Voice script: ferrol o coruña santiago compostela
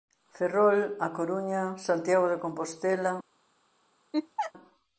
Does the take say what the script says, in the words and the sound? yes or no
no